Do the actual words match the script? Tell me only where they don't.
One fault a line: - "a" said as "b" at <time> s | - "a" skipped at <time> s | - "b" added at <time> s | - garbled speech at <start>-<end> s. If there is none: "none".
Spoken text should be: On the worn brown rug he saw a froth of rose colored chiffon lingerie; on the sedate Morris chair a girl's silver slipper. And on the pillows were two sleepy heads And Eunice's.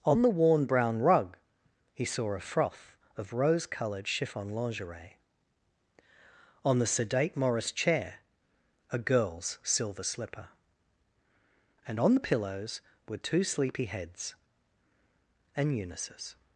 none